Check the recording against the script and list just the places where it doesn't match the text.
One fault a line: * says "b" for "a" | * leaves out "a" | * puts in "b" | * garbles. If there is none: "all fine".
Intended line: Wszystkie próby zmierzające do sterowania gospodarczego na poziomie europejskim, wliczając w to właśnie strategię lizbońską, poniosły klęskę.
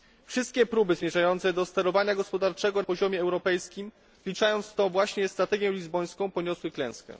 * leaves out "na"